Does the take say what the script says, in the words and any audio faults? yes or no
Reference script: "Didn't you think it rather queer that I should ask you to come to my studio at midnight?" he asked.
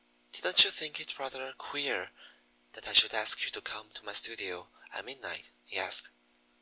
yes